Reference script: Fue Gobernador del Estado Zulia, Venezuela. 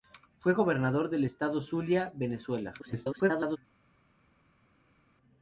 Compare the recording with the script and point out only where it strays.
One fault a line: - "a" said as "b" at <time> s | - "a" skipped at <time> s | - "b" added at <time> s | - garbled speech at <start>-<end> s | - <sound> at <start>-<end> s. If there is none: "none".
- garbled speech at 2.8-3.6 s